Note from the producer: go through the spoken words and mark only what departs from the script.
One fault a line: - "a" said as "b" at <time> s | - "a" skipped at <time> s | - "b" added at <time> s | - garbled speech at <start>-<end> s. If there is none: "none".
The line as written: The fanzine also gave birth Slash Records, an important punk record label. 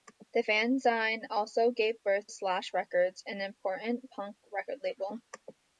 none